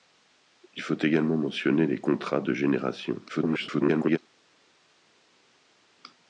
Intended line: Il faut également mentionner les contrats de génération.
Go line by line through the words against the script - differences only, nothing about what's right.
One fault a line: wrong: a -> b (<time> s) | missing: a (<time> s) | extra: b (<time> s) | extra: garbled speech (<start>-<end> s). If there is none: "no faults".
extra: garbled speech (3.3-4.2 s)